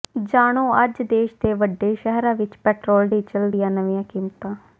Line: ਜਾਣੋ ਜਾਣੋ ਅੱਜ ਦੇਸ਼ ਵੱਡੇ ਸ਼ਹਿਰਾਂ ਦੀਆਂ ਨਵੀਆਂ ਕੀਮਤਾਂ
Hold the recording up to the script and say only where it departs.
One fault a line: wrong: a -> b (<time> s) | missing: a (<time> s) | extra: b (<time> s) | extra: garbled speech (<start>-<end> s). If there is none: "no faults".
missing: ਜਾਣੋ (0.6 s)
extra: ਦੇ (1.4 s)
extra: ਵਿਚ ਪੈਟਰੋਲ ਡੀਜ਼ਲ (2.4 s)